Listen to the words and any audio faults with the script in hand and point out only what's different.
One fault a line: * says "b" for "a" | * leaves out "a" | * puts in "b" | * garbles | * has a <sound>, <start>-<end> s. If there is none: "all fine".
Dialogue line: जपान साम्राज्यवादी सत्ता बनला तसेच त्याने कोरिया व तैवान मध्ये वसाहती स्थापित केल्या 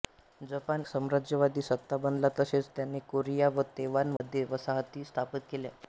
* has a dropout, 4.2-4.2 s